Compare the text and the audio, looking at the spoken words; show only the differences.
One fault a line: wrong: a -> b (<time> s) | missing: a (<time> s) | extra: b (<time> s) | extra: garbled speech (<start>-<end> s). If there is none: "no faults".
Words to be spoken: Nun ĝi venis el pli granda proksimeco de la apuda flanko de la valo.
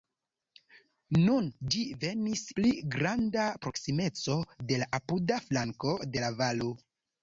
missing: el (2.4 s)